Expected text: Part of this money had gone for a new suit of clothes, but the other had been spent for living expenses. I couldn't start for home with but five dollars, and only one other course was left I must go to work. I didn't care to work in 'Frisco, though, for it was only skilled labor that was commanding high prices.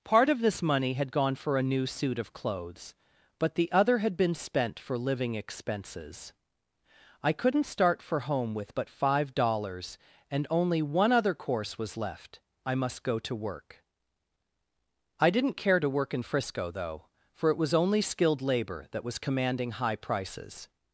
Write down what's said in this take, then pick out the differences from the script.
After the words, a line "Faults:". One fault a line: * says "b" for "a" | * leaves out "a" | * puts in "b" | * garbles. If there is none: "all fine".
Part of this money had gone for a new suit of clothes, but the other had been spent for living expenses. I couldn't start for home with but five dollars, and only one other course was left I must go to work. I didn't care to work in 'Frisco, though, for it was only skilled labor that was commanding high prices.
Faults:
all fine